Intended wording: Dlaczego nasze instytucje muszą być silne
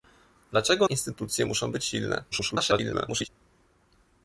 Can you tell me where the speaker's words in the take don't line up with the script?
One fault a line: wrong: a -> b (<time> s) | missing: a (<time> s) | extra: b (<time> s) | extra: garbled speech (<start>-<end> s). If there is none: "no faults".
missing: nasze (0.9 s)
extra: garbled speech (2.3-3.3 s)